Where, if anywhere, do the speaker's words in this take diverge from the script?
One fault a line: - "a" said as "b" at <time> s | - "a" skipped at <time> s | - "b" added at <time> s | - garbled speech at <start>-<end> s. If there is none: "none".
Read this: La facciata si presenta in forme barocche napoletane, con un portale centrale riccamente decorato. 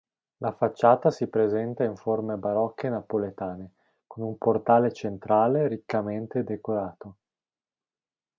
none